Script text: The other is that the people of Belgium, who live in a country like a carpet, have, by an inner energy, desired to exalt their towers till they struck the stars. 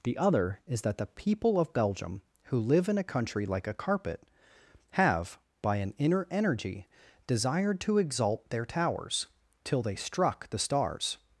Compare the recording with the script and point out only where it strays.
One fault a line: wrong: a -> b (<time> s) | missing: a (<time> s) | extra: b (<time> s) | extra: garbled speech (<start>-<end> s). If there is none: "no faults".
no faults